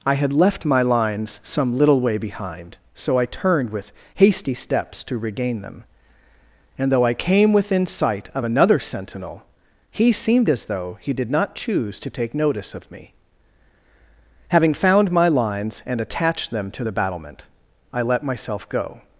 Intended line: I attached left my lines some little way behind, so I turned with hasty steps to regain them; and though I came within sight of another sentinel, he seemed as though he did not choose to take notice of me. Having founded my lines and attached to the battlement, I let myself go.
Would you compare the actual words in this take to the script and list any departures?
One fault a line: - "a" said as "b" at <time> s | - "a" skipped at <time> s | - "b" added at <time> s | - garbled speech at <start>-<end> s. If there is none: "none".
- "attached" said as "had" at 0.1 s
- "founded" said as "found" at 14.7 s
- "them" added at 16.5 s